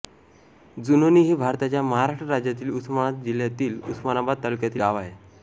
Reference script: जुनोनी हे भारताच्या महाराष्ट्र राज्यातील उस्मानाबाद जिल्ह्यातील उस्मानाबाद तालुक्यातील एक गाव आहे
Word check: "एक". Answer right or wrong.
wrong